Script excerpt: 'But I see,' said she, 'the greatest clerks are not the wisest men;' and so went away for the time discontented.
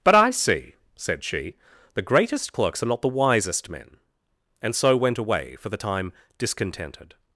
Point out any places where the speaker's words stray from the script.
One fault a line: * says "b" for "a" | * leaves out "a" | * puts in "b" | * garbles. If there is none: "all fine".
all fine